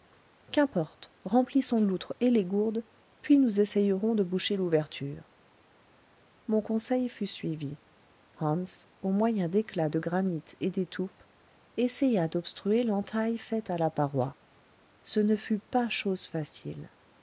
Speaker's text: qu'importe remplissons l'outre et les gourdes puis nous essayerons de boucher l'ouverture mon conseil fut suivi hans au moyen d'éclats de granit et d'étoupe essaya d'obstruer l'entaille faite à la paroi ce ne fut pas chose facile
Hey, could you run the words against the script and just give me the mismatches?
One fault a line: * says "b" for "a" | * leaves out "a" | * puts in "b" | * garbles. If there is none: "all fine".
all fine